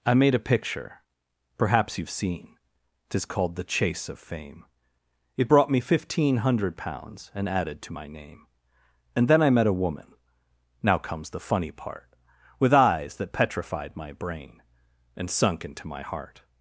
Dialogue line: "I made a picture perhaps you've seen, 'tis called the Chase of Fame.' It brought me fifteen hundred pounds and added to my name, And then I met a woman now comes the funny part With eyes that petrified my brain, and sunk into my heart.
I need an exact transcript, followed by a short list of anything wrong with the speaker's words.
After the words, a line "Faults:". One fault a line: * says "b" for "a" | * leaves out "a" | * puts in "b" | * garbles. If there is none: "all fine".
"I made a picture perhaps you've seen, 'tis called the Chase of Fame.' It brought me fifteen hundred pounds and added to my name, And then I met a woman now comes the funny part With eyes that petrified my brain, and sunk into my heart.
Faults:
all fine